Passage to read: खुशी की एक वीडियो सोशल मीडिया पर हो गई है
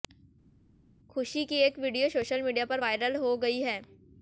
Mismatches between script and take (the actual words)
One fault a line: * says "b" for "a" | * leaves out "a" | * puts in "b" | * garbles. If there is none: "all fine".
* puts in "वायरल"